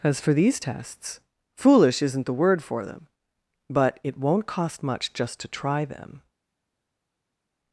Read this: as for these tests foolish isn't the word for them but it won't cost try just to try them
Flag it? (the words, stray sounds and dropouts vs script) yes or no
yes